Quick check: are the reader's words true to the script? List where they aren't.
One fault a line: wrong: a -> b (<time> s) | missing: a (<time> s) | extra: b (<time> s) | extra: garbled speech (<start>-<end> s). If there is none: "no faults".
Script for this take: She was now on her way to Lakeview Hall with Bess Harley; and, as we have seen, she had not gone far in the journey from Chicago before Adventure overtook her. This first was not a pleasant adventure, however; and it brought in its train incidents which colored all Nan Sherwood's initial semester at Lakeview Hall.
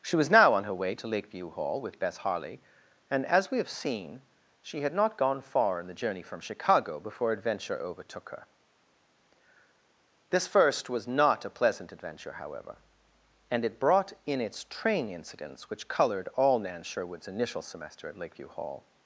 no faults